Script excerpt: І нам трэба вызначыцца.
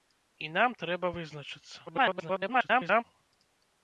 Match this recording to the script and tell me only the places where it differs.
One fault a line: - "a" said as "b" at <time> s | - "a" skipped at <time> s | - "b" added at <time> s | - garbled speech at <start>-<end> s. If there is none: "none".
- garbled speech at 1.9-3.0 s